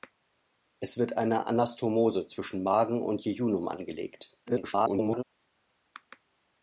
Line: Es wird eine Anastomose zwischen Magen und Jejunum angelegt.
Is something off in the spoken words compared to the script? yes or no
yes